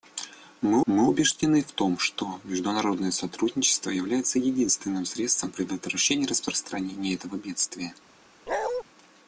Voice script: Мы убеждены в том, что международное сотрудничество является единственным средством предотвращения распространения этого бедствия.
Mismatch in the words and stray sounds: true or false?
true